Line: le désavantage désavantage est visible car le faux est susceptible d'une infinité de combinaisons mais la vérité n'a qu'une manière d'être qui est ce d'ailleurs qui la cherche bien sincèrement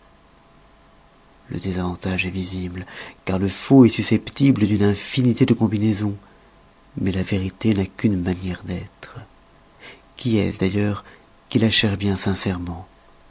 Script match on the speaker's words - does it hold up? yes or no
no